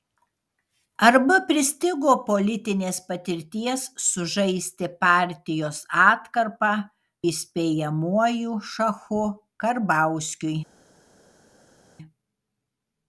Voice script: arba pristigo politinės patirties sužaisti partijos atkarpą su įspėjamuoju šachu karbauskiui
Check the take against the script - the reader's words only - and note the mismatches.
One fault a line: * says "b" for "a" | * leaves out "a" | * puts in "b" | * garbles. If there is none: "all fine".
* leaves out "su"